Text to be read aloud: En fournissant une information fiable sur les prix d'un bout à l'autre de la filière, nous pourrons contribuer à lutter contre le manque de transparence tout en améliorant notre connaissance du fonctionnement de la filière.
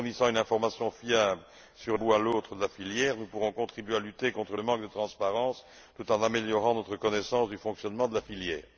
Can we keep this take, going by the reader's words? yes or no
no